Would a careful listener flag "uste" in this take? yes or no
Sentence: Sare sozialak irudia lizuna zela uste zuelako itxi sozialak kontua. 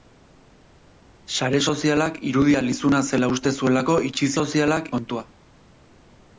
no